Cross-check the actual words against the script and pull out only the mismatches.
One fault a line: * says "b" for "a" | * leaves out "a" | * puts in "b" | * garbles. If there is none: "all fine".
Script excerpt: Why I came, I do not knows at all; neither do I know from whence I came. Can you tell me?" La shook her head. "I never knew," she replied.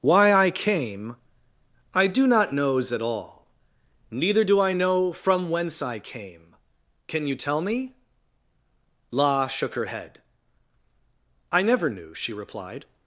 all fine